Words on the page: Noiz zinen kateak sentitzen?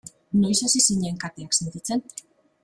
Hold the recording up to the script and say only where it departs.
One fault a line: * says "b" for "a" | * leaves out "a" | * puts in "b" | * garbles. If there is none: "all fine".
* puts in "hasi"